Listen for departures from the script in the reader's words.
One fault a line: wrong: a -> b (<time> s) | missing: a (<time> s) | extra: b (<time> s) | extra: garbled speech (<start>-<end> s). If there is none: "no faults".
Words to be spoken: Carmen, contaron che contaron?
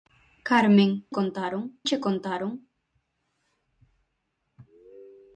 no faults